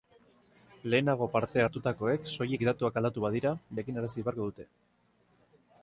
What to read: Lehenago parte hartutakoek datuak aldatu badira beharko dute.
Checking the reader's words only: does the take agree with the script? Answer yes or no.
no